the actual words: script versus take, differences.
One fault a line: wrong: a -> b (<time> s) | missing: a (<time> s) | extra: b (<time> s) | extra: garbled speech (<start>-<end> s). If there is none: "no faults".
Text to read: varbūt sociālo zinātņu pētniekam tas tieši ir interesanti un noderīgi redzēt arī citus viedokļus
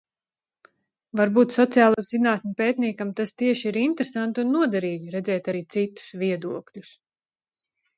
no faults